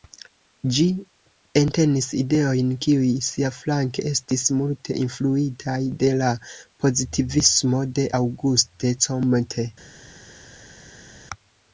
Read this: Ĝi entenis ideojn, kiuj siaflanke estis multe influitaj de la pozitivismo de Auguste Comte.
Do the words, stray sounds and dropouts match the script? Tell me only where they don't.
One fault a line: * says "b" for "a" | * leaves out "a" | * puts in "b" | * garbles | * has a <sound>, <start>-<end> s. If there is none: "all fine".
all fine